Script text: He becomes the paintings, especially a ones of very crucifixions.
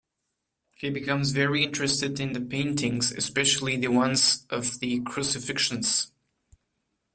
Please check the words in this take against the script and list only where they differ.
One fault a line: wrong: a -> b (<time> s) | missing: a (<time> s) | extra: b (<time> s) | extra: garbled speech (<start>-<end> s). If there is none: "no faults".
extra: very interested in (1.3 s)
wrong: a -> the (3.8 s)
wrong: very -> the (4.8 s)